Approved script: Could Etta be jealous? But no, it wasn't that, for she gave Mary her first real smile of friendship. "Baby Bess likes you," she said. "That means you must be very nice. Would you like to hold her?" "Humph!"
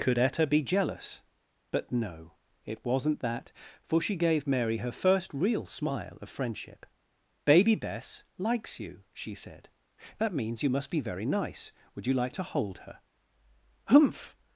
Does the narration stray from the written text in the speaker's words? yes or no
no